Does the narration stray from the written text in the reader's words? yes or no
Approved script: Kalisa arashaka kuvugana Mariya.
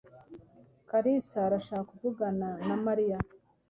yes